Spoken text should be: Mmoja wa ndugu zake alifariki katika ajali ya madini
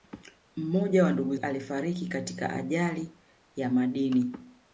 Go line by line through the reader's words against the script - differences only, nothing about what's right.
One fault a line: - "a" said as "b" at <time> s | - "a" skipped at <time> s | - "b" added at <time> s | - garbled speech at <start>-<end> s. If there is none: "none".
- "zake" skipped at 1.4 s